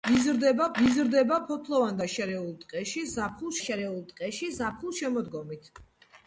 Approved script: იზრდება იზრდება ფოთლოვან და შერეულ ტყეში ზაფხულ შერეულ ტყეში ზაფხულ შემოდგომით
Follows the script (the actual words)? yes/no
yes